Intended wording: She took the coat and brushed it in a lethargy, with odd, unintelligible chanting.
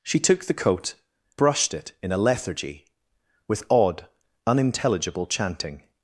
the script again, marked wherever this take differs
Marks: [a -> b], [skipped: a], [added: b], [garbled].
She took the coat [skipped: and] brushed it in a lethargy, with odd, unintelligible chanting.